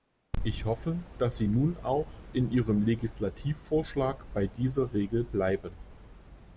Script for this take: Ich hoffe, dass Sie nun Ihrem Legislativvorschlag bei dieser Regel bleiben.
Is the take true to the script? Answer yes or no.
no